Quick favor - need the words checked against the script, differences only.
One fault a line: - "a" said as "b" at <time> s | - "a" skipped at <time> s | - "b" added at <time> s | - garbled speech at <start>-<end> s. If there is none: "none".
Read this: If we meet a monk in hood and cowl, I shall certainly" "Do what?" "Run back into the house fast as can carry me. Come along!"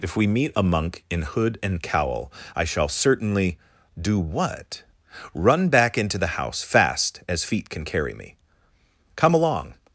- "feet" added at 7.4 s